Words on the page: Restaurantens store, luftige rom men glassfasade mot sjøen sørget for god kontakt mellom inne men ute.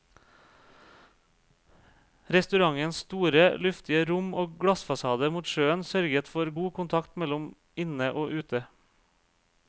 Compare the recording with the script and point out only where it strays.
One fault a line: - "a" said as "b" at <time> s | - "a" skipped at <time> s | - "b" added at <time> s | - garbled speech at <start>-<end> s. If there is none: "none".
- "men" said as "og" at 4.4 s
- "men" said as "og" at 8.1 s